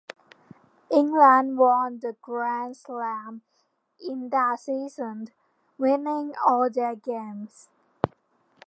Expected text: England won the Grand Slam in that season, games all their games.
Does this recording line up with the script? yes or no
no